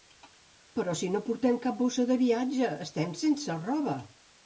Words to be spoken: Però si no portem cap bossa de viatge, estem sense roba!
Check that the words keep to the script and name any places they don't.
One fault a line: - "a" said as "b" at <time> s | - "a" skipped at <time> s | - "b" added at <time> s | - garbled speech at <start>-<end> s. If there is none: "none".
none